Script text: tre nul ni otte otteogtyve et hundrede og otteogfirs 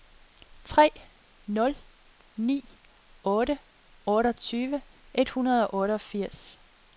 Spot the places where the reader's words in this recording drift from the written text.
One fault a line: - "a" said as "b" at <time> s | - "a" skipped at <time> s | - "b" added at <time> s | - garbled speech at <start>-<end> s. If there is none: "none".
none